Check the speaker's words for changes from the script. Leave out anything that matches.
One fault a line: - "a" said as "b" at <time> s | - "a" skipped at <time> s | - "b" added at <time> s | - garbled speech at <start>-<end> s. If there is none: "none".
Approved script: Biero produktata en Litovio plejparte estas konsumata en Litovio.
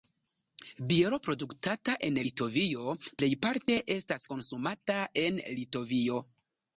none